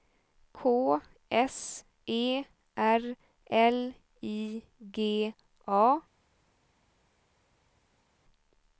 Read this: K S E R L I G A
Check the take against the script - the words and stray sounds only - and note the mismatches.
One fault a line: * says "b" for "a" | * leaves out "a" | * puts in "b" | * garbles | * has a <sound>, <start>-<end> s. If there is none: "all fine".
all fine